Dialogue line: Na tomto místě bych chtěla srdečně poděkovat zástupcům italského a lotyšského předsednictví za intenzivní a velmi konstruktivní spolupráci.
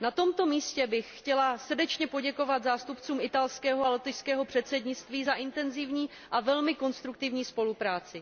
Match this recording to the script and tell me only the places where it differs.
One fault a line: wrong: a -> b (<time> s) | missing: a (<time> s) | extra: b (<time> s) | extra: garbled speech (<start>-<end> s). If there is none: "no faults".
no faults